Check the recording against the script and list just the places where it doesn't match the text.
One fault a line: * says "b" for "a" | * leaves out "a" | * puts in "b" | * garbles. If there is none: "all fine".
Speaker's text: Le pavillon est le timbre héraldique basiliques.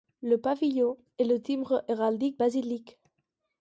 all fine